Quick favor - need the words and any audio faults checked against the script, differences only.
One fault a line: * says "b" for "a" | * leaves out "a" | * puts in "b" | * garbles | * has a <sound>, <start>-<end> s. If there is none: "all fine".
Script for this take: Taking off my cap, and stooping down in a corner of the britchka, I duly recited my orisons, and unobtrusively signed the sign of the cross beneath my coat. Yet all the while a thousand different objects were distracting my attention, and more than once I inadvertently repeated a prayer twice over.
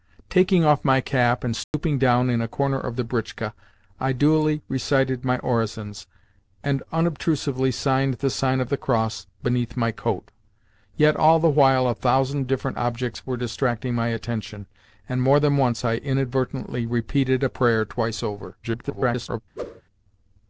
* has a dropout, 1.6-1.7 s
* garbles
* has a whoosh, 19.6-19.8 s